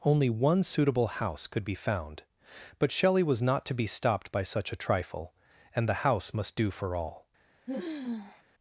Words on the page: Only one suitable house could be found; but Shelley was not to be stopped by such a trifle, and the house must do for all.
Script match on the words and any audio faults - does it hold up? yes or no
no